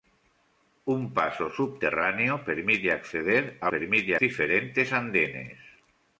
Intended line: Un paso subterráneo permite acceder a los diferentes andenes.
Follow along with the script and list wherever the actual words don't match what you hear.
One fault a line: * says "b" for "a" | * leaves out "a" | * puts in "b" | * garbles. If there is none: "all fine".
* says "permite" for "los"